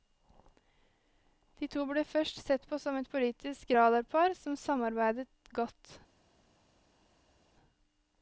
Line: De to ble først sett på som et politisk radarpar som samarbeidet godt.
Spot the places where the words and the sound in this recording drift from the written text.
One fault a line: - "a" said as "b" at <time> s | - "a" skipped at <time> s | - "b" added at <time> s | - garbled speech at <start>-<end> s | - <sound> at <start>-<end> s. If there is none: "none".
none